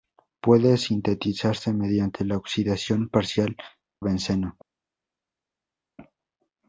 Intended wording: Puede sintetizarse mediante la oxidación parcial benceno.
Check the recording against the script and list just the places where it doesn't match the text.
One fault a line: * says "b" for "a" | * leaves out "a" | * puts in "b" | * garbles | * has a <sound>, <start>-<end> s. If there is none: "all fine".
all fine